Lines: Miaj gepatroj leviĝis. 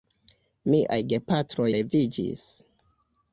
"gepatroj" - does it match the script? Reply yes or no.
yes